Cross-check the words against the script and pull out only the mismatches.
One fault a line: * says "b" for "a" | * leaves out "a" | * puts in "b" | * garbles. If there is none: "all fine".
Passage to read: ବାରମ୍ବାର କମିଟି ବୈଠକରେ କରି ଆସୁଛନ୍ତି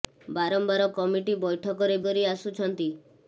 all fine